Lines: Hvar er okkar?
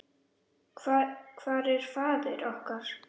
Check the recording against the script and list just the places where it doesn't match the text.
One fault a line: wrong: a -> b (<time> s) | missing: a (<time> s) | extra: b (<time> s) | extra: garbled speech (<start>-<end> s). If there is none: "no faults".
extra: faðir (2.0 s)